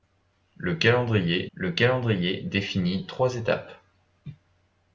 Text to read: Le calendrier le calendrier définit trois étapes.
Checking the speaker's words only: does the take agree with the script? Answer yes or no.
yes